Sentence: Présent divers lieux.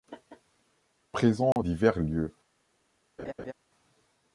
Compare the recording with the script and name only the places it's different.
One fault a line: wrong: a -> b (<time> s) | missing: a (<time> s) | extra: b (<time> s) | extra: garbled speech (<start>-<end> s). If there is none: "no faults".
no faults